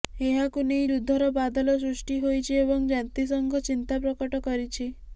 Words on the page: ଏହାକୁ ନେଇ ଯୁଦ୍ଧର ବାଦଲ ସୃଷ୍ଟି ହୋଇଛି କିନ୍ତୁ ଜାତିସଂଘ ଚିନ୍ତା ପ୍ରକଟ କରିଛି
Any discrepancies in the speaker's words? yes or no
yes